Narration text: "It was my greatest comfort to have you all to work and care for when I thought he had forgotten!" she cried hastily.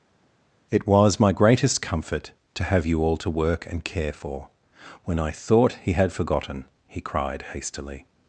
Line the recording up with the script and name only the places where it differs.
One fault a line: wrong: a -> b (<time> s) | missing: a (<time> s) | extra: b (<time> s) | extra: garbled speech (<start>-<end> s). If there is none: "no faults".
wrong: she -> he (6.9 s)